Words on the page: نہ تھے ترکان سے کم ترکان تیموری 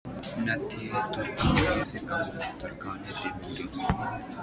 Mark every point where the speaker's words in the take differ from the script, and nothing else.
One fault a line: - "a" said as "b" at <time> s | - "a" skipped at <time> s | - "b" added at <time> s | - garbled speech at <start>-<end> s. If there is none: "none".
none